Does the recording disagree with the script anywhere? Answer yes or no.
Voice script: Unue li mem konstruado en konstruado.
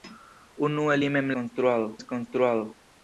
no